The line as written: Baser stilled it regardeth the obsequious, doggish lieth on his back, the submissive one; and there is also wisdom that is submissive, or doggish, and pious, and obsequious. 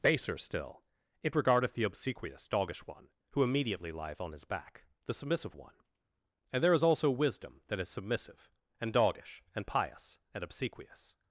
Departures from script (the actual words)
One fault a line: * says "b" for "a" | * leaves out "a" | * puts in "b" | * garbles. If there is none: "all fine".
* says "still" for "stilled"
* puts in "one who immediately"
* says "and" for "or"